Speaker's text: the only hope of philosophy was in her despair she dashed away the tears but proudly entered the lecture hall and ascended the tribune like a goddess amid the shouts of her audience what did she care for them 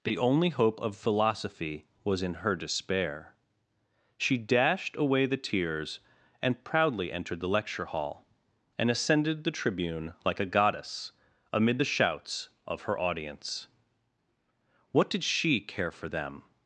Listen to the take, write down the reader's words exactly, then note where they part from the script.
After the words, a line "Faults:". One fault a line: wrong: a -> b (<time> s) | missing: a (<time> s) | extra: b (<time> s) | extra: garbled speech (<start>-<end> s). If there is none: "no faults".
the only hope of philosophy was in her despair she dashed away the tears and proudly entered the lecture hall and ascended the tribune like a goddess amid the shouts of her audience what did she care for them
Faults:
wrong: but -> and (6.4 s)